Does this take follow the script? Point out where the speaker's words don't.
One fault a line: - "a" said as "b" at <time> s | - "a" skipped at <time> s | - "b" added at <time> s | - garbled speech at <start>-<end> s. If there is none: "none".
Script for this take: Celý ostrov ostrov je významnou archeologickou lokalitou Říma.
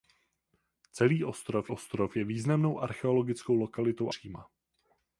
none